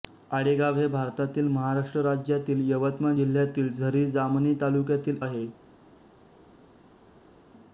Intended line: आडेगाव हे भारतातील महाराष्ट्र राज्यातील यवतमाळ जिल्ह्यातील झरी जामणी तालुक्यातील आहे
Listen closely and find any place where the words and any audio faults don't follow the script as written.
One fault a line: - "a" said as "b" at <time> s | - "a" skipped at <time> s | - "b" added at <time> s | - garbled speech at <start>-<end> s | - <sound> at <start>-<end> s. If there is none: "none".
none